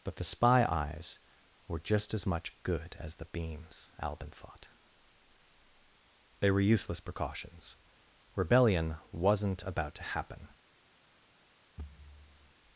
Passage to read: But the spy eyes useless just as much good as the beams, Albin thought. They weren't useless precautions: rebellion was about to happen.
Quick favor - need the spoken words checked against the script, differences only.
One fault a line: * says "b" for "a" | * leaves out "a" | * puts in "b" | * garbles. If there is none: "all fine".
* says "were" for "useless"
* says "were" for "weren't"
* says "wasn't" for "was"